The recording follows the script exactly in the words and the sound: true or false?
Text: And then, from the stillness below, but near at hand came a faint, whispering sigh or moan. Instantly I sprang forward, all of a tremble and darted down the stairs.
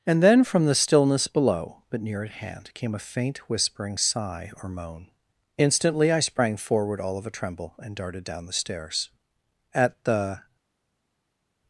false